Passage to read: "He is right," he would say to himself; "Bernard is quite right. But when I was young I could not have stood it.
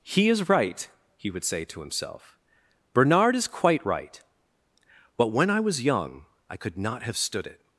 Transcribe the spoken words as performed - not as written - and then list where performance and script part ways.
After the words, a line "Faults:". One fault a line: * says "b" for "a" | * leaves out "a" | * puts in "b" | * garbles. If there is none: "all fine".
"He is right," he would say to himself; "Bernard is quite right. But when I was young I could not have stood it.
Faults:
all fine